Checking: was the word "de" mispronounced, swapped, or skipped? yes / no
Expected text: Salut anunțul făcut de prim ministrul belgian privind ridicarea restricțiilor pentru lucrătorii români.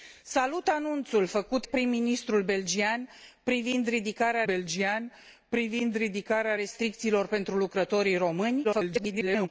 yes